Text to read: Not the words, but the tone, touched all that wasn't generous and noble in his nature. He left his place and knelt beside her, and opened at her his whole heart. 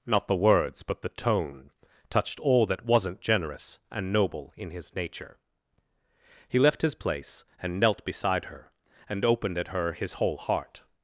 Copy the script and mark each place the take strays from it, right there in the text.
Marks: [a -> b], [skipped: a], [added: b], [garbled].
Not the words, but the tone, touched all that wasn't generous and noble in his nature. He left his place and knelt beside her, and opened at her his whole heart.